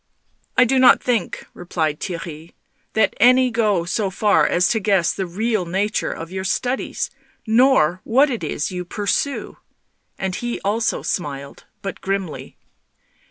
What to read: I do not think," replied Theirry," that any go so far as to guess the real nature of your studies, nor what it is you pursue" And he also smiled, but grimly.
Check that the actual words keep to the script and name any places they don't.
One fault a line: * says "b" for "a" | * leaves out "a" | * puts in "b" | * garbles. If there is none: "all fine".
all fine